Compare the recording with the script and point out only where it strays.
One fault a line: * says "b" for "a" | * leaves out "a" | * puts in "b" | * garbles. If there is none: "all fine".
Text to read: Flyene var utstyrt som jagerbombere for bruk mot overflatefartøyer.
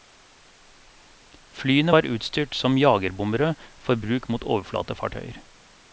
all fine